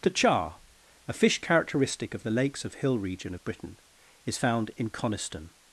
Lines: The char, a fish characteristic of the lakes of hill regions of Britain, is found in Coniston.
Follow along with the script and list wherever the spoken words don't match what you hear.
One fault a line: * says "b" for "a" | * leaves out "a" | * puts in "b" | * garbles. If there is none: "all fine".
* says "region" for "regions"